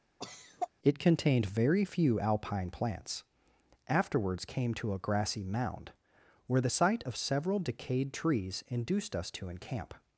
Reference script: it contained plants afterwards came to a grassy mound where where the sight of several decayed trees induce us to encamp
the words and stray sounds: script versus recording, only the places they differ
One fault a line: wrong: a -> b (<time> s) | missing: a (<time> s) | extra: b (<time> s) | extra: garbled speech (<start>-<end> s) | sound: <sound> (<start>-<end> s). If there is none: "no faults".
sound: cough (0.2-0.7 s)
extra: very few alpine (1.5 s)
missing: where (6.6 s)
wrong: induce -> induced (8.7 s)